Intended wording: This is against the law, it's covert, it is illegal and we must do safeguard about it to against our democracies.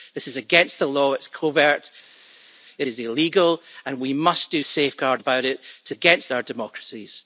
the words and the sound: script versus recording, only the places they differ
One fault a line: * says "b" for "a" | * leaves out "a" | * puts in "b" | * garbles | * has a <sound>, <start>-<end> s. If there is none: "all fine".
all fine